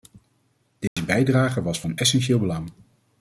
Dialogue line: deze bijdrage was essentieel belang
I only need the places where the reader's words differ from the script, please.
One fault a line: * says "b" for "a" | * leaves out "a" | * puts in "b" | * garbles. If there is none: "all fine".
* puts in "van"